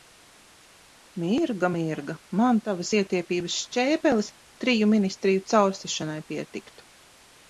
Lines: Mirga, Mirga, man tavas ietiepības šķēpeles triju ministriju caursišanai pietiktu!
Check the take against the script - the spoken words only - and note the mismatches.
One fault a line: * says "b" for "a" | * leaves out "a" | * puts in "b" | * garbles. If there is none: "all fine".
all fine